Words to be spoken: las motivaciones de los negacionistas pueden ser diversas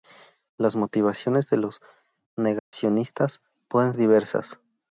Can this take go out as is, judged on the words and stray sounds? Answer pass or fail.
fail